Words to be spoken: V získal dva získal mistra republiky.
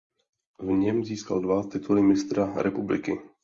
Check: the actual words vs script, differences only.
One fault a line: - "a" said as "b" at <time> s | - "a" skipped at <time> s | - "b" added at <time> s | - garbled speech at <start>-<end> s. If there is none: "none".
- "něm" added at 0.7 s
- "získal" said as "tituly" at 1.6 s